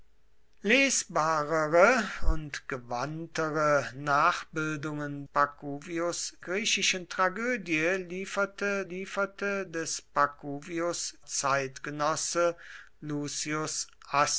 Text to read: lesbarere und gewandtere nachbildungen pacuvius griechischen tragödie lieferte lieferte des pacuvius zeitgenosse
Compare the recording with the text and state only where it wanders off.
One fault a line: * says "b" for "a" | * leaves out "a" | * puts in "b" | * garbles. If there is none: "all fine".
all fine